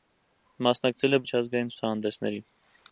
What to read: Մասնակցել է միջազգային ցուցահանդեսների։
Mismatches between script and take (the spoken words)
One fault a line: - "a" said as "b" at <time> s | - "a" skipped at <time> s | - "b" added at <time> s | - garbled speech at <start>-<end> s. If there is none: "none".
none